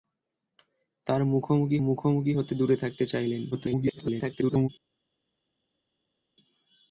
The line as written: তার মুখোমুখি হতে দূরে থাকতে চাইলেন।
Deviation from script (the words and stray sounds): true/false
true